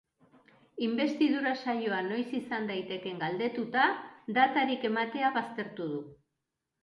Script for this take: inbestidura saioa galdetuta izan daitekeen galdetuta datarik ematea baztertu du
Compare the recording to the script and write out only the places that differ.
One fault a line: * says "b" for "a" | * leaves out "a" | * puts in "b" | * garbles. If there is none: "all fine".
* says "noiz" for "galdetuta"